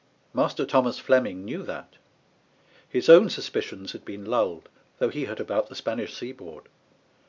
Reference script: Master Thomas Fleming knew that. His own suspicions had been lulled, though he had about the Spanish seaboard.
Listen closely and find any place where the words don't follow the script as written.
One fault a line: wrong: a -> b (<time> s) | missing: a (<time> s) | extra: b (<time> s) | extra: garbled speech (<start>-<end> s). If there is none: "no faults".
no faults